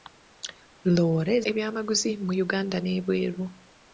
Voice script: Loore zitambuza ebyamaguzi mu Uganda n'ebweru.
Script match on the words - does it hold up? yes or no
no